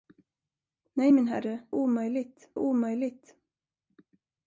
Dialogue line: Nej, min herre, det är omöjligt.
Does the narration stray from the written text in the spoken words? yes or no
yes